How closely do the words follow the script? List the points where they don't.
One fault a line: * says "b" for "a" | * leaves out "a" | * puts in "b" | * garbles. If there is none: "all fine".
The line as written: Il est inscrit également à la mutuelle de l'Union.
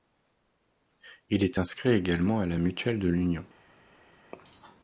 all fine